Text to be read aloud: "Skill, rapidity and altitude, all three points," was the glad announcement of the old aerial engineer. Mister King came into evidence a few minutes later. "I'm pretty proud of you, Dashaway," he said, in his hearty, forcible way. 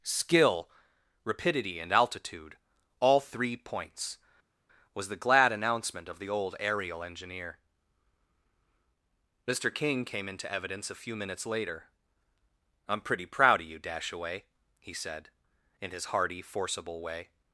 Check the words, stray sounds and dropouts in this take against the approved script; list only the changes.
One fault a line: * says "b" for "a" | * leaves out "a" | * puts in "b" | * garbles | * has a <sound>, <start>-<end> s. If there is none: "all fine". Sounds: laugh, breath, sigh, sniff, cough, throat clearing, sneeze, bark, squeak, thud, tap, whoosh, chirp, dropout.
all fine